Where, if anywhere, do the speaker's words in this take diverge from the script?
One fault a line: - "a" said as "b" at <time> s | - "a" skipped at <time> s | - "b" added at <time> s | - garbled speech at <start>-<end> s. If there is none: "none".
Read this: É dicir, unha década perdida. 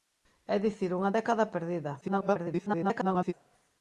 - garbled speech at 2.0-3.3 s